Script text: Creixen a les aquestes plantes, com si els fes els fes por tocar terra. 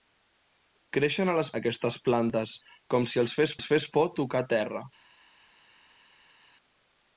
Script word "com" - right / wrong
right